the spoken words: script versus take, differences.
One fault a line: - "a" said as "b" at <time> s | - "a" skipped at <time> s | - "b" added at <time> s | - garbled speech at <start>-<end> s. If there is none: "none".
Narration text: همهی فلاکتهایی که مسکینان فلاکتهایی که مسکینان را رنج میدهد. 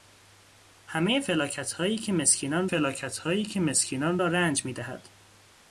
none